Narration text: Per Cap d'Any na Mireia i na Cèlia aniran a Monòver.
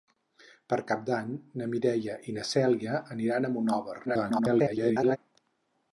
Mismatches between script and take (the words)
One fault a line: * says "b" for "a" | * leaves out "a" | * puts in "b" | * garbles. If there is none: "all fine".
* garbles